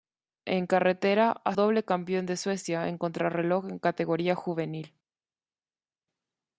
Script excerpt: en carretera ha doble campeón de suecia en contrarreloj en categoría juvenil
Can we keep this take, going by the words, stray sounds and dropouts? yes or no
yes